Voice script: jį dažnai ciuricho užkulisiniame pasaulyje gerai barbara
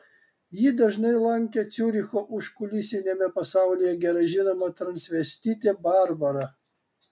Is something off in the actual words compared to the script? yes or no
yes